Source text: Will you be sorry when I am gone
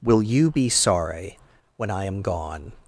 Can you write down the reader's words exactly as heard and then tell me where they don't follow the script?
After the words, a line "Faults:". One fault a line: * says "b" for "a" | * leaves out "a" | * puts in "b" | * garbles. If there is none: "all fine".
Will you be sorry when I am gone
Faults:
all fine